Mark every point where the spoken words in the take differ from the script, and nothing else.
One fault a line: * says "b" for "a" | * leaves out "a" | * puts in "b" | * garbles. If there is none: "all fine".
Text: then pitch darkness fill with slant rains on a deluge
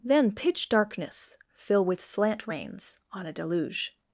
all fine